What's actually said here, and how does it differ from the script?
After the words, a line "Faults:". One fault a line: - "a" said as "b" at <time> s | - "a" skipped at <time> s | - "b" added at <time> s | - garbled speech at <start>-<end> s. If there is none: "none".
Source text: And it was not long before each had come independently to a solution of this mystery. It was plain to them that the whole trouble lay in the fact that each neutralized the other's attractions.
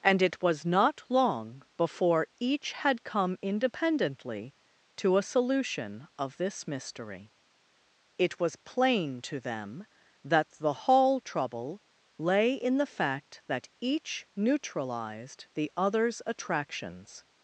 And it was not long before each had come independently to a solution of this mystery. It was plain to them that the hall trouble lay in the fact that each neutralized the other's attractions.
Faults:
- "whole" said as "hall" at 10.7 s